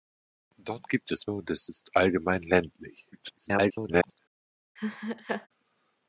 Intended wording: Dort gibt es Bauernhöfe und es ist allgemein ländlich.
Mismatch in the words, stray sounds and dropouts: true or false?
true